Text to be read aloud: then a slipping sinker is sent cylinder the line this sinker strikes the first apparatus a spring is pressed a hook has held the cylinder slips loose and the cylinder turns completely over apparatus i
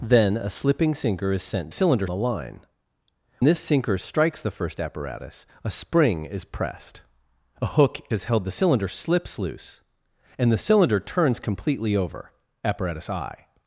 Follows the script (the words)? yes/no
yes